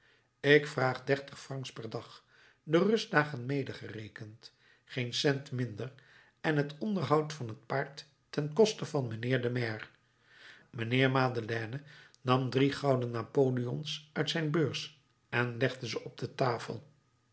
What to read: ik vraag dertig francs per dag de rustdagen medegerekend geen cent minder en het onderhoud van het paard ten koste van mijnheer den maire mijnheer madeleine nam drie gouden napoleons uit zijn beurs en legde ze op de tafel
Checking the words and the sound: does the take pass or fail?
pass